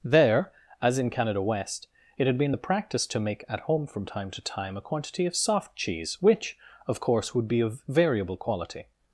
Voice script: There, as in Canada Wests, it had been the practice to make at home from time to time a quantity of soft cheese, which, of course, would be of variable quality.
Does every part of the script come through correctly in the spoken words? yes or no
no